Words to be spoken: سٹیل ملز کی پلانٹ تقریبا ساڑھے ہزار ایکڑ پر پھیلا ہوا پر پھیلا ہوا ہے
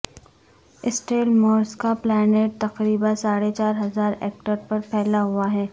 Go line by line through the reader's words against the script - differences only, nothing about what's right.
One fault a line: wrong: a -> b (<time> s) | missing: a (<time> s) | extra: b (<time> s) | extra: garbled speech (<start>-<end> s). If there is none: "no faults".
wrong: کی -> کا (1.7 s)
extra: چار (3.5 s)
missing: پر پھیلا ہوا (5.5 s)